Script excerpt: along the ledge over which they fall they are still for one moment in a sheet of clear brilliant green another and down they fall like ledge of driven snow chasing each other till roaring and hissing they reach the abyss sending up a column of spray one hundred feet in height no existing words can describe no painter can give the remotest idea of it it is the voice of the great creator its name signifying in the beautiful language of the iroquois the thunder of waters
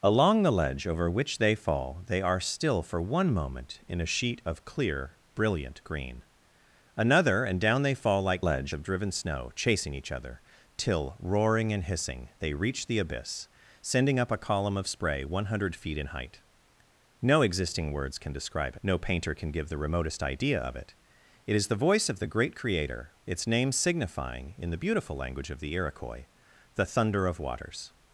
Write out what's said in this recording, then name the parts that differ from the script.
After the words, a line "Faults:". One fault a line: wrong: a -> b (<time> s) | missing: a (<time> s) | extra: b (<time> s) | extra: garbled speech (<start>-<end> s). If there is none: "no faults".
along the ledge over which they fall they are still for one moment in a sheet of clear brilliant green another and down they fall like ledge of driven snow chasing each other till roaring and hissing they reach the abyss sending up a column of spray one hundred feet in height no existing words can describe no painter can give the remotest idea of it it is the voice of the great creator its name signifying in the beautiful language of the iroquois the thunder of waters
Faults:
no faults